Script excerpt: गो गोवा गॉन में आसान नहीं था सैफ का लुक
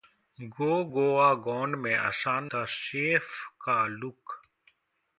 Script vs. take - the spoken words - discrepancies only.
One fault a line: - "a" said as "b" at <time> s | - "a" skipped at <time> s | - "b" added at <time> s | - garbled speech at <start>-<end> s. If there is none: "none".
- "नहीं" skipped at 2.4 s